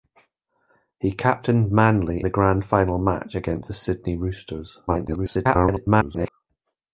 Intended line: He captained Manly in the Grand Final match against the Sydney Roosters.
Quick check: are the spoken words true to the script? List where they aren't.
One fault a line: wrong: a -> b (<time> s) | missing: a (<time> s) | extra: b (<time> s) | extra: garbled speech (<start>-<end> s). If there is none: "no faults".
missing: in (2.2 s)
extra: garbled speech (4.9-6.3 s)